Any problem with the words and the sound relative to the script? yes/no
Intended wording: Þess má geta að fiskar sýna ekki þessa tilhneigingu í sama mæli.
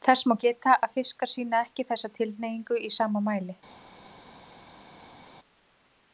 no